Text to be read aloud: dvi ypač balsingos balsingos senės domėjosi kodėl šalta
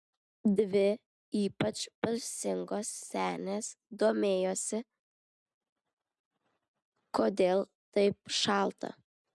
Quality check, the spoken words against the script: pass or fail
fail